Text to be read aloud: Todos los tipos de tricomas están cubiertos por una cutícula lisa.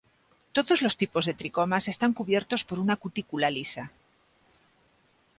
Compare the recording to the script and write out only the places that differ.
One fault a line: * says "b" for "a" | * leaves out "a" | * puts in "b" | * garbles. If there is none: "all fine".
all fine